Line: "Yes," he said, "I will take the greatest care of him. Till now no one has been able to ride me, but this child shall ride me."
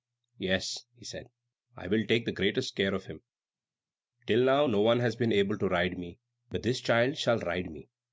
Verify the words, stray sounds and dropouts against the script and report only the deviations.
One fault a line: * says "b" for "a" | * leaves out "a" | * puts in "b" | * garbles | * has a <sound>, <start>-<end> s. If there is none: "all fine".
all fine